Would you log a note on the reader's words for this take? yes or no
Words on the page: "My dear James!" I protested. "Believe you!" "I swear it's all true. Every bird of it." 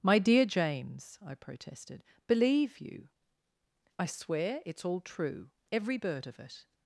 no